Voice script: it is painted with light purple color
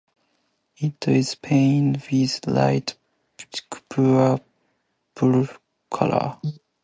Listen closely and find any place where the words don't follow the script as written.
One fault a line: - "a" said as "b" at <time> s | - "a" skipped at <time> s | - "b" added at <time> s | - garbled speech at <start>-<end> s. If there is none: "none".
none